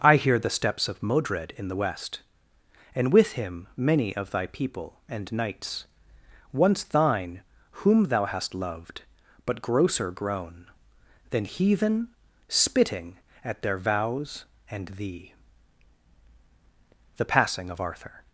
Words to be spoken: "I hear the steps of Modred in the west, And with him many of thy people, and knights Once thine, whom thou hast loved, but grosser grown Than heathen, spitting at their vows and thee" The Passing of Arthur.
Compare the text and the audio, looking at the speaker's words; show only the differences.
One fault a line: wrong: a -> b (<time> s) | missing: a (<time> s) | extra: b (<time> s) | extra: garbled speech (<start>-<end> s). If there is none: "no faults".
no faults